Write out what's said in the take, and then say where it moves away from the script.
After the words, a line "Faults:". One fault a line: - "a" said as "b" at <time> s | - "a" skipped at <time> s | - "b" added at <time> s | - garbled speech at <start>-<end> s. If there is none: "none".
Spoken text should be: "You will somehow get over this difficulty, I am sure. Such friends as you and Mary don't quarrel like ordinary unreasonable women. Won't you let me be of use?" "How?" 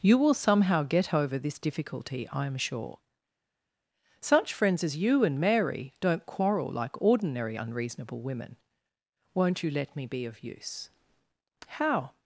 "You will somehow get over this difficulty, I am sure. Such friends as you and Mary don't quarrel like ordinary unreasonable women. Won't you let me be of use?" "How?"
Faults:
none